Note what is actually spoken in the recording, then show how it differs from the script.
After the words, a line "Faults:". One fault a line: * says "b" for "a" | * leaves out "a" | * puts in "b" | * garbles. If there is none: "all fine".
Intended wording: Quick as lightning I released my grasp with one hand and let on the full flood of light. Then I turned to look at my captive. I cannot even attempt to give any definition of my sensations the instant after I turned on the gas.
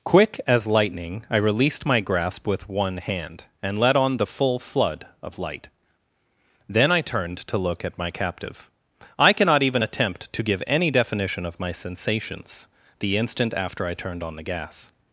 Quick as lightning I released my grasp with one hand and let on the full flood of light. Then I turned to look at my captive. I cannot even attempt to give any definition of my sensations the instant after I turned on the gas.
Faults:
all fine